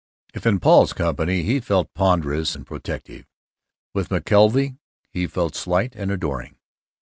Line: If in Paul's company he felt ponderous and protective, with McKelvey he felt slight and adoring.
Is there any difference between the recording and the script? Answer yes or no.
no